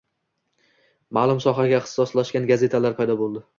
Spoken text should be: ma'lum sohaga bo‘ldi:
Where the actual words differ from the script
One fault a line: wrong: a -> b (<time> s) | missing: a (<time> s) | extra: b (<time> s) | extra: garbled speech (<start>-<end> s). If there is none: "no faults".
extra: ixtisoslashgan gazetalar paydo (1.8 s)